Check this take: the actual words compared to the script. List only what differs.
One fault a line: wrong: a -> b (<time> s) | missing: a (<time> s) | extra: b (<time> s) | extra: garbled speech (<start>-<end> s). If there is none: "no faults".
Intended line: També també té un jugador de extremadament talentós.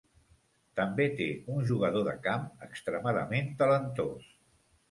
missing: també (1.1 s)
extra: camp (2.3 s)